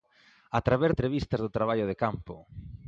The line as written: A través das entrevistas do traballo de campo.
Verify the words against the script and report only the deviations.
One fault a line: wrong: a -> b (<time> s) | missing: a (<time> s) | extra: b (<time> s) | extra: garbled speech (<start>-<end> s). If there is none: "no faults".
missing: das (0.9 s)